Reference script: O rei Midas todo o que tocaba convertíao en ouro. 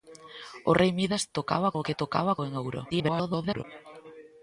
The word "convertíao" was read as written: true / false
false